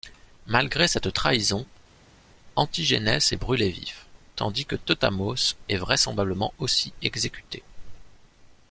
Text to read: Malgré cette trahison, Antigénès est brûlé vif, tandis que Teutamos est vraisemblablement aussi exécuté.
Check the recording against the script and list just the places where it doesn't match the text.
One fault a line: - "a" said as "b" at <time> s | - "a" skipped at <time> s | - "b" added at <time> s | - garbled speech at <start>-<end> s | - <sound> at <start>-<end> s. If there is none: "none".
none